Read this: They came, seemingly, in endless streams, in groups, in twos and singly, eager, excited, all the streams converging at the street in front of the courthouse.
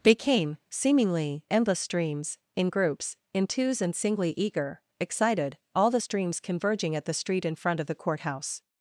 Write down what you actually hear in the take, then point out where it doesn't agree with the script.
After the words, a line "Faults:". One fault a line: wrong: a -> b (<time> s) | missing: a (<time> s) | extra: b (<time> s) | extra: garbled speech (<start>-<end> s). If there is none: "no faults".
They came, seemingly, endless streams, in groups, in twos and singly, eager, excited, all the streams converging at the street in front of the courthouse.
Faults:
missing: in (1.4 s)